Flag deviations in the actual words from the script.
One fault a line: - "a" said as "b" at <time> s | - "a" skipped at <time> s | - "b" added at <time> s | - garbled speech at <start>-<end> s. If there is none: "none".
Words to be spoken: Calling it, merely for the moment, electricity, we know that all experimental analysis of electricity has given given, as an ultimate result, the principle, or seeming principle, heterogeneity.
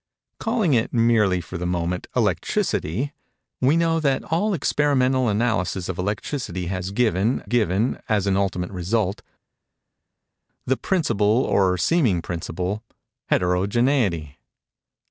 none